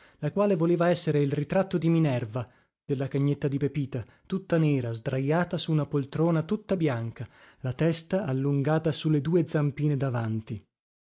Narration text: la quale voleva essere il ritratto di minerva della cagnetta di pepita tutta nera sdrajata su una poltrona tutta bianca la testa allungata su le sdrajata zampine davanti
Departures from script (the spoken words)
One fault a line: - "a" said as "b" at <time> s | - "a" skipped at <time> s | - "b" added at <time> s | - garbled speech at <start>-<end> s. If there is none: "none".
- "sdrajata" said as "due" at 9.2 s